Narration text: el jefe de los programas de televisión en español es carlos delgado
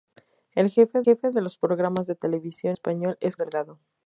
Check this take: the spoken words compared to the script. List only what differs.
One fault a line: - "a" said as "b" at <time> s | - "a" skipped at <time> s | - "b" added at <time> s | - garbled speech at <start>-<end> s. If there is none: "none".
- "jefe" added at 1.0 s
- "en" skipped at 2.8 s
- "carlos" skipped at 3.4 s